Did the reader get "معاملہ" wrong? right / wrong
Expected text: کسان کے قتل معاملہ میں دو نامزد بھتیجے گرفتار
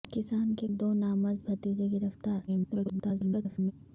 wrong